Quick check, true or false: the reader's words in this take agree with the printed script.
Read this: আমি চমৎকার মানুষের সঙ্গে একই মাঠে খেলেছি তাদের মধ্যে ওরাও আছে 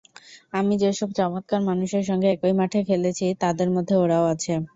false